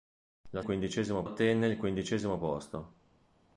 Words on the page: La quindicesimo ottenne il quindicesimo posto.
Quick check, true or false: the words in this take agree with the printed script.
true